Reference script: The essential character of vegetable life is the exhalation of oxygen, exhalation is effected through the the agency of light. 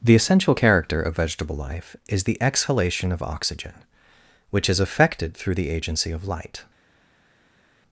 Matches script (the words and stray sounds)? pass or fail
fail